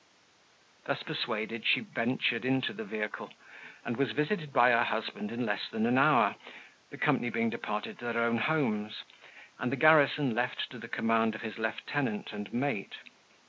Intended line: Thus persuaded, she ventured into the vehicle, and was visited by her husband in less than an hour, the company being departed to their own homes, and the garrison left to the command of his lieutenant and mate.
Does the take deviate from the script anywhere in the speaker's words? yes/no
no